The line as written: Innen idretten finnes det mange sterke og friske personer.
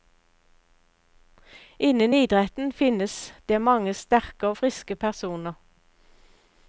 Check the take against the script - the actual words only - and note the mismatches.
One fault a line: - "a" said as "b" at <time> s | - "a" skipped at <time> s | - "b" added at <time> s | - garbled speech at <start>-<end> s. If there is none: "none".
none